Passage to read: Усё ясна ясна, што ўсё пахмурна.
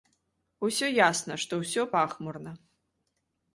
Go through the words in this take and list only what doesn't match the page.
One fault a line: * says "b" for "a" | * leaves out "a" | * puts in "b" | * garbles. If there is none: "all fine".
* leaves out "ясна"